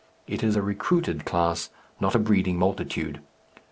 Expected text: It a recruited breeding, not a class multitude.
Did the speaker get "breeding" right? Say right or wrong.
wrong